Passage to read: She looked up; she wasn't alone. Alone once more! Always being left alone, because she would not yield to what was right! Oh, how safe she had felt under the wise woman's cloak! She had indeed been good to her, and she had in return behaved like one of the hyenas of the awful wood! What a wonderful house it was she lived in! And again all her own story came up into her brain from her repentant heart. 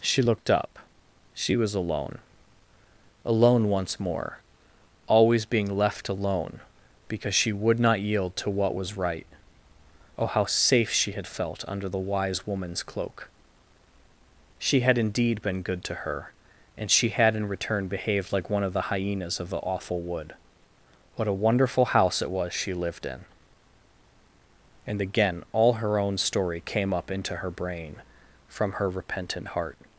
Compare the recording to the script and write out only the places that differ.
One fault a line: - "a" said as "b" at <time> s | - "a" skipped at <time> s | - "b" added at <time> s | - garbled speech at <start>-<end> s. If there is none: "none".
- "wasn't" said as "was" at 1.6 s